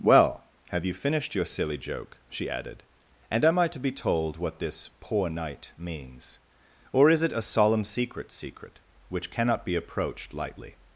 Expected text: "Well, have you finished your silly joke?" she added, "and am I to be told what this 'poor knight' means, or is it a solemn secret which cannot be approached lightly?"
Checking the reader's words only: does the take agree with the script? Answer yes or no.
no